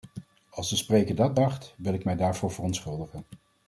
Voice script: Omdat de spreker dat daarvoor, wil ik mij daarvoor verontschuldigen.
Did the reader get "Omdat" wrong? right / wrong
wrong